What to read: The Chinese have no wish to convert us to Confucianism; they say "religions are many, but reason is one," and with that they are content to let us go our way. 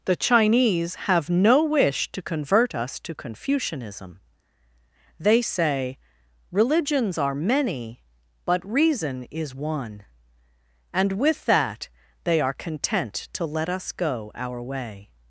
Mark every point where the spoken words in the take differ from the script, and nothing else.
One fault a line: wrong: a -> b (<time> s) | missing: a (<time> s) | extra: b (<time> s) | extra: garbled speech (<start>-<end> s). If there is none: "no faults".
no faults